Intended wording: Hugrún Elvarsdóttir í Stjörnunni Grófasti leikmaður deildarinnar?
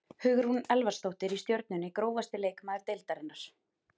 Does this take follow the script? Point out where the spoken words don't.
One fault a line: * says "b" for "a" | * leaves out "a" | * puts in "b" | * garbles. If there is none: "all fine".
all fine